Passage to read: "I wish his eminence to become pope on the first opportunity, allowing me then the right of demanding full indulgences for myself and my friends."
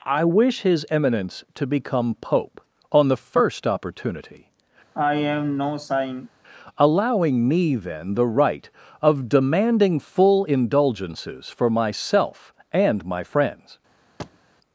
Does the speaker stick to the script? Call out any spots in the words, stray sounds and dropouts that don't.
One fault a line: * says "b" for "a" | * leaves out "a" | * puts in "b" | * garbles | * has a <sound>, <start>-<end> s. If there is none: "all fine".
* has a sigh, 4.9-6.3 s
* has a thud, 14.2-14.4 s